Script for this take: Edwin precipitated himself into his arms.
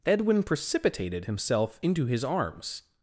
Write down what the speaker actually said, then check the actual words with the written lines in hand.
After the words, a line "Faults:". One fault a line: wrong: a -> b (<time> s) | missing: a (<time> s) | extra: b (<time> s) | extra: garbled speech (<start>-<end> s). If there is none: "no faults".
Edwin precipitated himself into his arms.
Faults:
no faults